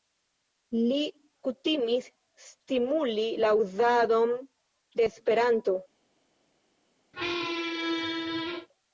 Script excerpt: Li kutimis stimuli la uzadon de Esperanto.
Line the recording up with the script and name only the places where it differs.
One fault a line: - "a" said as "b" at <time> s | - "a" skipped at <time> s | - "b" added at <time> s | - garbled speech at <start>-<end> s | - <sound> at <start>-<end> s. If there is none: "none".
- squeak at 7.1-8.7 s